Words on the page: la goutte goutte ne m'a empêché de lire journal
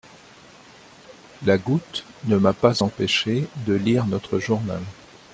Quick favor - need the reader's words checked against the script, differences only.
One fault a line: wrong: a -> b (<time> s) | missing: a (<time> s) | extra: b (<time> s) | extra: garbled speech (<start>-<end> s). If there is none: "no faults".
missing: goutte (2.0 s)
extra: pas (2.5 s)
extra: notre (4.0 s)